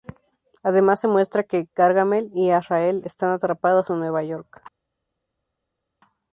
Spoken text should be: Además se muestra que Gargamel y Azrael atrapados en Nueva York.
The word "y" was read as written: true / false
true